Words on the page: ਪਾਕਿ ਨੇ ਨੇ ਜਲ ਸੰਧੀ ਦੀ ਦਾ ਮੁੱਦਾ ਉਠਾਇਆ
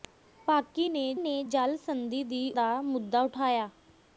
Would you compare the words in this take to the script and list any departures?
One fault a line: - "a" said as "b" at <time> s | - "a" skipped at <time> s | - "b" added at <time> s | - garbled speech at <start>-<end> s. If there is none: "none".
none